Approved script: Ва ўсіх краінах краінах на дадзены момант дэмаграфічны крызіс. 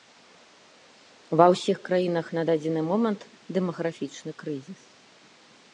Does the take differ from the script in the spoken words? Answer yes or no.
yes